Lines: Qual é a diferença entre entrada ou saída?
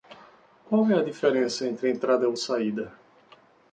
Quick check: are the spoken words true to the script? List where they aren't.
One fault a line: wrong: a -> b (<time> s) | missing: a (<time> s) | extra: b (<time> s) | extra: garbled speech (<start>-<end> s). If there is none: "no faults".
no faults